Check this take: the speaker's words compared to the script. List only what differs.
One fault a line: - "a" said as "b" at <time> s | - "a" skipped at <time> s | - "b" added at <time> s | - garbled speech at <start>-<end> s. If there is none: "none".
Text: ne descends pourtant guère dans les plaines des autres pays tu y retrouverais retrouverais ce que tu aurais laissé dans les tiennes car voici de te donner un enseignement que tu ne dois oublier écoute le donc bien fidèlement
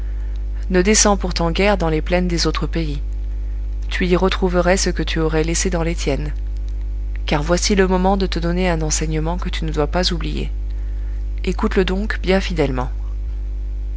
- "retrouverais" skipped at 4.8 s
- "le moment" added at 7.8 s
- "pas" added at 9.8 s